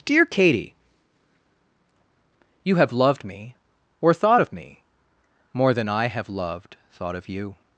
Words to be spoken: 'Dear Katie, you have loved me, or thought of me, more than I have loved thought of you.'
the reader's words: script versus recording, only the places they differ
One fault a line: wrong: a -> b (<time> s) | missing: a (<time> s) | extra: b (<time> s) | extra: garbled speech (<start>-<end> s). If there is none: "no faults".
no faults